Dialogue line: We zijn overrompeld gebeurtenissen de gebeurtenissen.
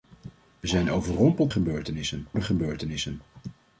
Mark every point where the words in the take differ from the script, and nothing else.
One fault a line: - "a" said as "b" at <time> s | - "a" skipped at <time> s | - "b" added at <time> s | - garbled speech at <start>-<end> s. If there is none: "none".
none